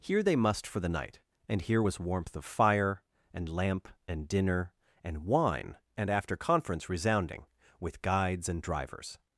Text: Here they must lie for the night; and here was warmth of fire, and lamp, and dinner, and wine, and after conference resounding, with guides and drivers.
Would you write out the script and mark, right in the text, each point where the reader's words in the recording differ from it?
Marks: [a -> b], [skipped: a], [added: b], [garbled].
Here they must [skipped: lie] for the night; and here was warmth of fire, and lamp, and dinner, and wine, and after conference resounding, with guides and drivers.